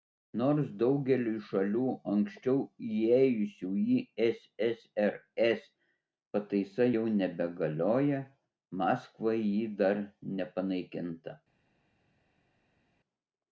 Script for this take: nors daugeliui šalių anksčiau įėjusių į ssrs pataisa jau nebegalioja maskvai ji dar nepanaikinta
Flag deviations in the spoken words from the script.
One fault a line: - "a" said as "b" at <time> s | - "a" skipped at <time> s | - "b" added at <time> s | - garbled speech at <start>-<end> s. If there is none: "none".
none